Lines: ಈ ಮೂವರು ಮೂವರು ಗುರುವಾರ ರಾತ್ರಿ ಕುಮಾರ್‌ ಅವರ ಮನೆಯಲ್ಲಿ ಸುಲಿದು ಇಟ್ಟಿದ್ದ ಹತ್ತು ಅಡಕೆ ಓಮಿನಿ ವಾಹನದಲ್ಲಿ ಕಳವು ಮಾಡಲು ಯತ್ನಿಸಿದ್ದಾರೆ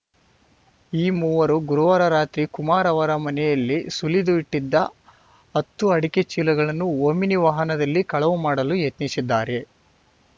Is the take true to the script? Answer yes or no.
no